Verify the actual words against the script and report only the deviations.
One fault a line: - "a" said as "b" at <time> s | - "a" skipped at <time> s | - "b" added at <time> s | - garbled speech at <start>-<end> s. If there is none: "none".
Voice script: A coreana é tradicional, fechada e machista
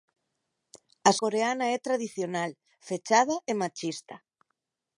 none